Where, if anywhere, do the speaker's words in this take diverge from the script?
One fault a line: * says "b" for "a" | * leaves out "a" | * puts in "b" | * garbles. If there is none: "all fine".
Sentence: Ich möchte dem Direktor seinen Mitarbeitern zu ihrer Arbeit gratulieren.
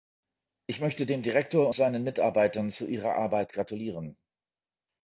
all fine